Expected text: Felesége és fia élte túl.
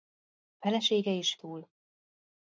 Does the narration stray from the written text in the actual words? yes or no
yes